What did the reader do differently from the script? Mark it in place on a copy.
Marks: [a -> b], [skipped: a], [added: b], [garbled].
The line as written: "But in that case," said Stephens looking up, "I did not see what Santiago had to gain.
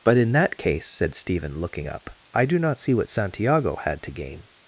"But in that case," said [Stephens -> Stephen] looking up, "I [did -> do] not see what Santiago had to gain.